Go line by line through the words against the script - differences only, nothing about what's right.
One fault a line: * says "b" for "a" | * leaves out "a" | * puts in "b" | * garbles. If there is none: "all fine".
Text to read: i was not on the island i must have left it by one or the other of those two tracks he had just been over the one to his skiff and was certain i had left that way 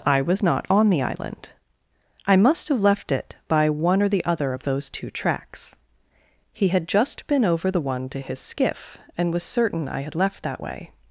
all fine